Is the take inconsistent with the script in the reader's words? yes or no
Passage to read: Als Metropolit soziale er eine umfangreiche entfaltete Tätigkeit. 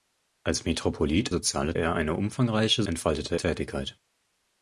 no